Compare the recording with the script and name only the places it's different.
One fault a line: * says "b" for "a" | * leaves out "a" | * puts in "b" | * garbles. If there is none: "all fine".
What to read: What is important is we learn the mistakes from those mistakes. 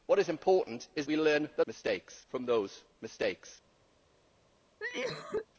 all fine